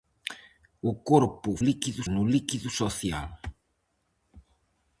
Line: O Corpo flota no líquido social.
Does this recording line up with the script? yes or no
no